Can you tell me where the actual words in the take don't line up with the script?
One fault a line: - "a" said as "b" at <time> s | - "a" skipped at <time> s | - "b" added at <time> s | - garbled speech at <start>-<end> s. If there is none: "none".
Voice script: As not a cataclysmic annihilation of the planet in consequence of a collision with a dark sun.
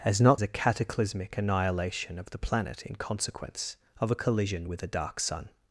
none